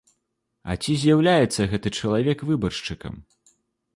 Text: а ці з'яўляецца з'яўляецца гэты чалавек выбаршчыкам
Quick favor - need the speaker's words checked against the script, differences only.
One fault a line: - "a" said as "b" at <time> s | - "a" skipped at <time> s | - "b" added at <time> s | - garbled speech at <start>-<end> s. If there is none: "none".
- "з'яўляецца" skipped at 1.7 s